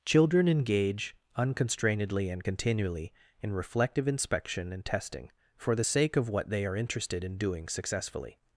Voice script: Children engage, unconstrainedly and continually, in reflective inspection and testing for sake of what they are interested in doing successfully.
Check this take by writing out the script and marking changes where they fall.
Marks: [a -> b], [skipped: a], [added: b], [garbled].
Children engage, unconstrainedly and continually, in reflective inspection and testing for [added: the] sake of what they are interested in doing successfully.